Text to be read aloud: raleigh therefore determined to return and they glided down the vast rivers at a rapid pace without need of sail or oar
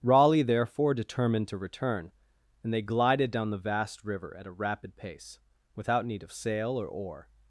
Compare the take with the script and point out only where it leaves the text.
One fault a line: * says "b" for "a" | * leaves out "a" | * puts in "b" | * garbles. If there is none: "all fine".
* says "river" for "rivers"